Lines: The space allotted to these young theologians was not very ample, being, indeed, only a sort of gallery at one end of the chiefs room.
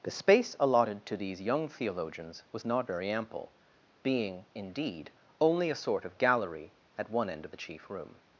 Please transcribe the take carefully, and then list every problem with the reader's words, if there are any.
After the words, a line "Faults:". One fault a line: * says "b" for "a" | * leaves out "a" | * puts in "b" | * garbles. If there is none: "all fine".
The space allotted to these young theologians was not very ample, being, indeed, only a sort of gallery at one end of the chief room.
Faults:
* says "chief" for "chiefs"